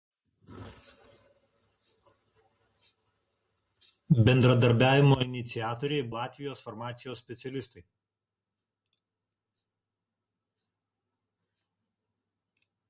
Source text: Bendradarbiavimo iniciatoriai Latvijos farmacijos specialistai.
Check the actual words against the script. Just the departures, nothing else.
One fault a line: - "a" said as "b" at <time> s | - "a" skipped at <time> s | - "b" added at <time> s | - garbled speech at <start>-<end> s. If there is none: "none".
none